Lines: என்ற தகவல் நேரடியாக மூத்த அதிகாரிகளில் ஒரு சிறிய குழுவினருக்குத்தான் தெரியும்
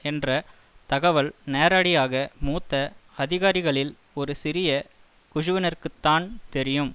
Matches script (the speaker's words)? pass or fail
pass